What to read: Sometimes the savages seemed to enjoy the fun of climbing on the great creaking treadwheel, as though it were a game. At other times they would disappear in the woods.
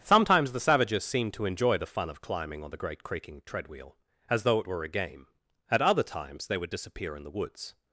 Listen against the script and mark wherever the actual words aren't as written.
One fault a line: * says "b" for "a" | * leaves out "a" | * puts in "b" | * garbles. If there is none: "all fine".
all fine